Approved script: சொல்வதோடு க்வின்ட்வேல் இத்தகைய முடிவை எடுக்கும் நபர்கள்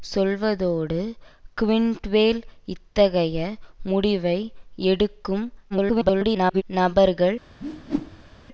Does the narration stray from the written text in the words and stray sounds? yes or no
yes